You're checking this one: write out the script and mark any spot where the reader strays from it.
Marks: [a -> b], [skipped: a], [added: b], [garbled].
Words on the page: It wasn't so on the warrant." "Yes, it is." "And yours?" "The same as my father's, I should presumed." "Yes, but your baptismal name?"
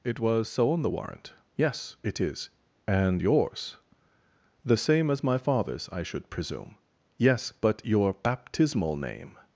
It [wasn't -> was] so on the warrant." "Yes, it is." "And yours?" "The same as my father's, I should [presumed." -> presume] "Yes, but your baptismal name?"